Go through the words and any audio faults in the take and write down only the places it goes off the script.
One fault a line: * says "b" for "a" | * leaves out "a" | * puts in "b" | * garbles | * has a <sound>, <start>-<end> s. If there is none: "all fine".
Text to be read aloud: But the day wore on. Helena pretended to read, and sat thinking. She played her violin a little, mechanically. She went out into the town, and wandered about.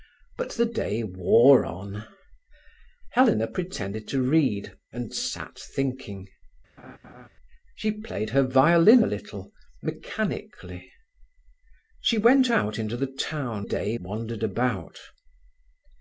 * has a laugh, 6.8-7.3 s
* says "day" for "and"